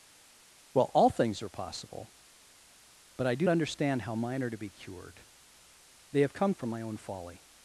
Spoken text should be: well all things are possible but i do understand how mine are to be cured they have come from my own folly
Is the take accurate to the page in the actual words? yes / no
yes